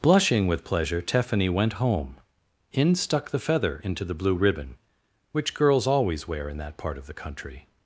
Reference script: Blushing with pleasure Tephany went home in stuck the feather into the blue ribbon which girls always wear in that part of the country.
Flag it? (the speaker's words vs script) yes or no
no